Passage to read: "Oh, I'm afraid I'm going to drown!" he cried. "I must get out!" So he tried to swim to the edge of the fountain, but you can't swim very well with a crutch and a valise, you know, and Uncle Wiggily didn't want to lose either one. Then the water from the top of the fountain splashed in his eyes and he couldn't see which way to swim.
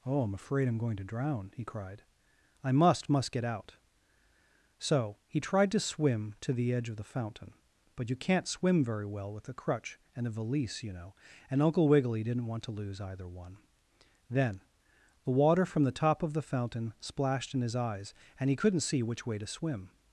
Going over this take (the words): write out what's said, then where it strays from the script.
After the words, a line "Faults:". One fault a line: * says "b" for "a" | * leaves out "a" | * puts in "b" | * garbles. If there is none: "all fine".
"Oh, I'm afraid I'm going to drown!" he cried. "I must must get out!" So he tried to swim to the edge of the fountain, but you can't swim very well with a crutch and a valise, you know, and Uncle Wiggily didn't want to lose either one. Then the water from the top of the fountain splashed in his eyes and he couldn't see which way to swim.
Faults:
* puts in "must"